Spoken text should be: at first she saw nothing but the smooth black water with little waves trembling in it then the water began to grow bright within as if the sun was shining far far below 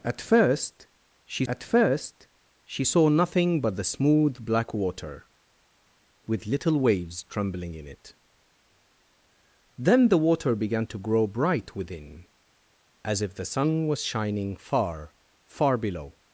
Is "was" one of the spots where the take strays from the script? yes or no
no